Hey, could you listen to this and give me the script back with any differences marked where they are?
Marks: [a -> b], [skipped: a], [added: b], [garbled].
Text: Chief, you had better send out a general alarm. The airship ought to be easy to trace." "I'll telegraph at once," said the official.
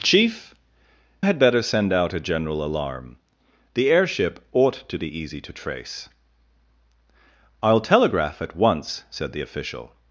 Chief, [skipped: you] had better send out a general alarm. The airship ought to be easy to trace." "I'll telegraph at once," said the official.